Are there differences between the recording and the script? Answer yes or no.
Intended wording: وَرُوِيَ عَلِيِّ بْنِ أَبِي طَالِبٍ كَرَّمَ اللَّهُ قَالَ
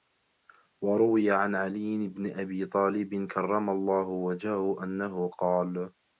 yes